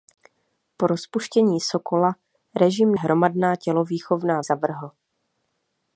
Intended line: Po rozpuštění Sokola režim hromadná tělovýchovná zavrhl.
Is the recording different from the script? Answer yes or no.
no